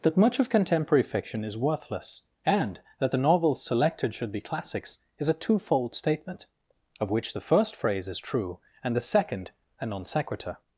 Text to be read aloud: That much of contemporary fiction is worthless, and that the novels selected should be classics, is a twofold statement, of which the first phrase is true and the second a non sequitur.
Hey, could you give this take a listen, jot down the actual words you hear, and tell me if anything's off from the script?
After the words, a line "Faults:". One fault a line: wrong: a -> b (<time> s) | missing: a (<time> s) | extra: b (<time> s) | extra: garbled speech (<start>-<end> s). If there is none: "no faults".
That much of contemporary fiction is worthless, and that the novels selected should be classics, is a twofold statement, of which the first phrase is true and the second a non sequitur.
Faults:
no faults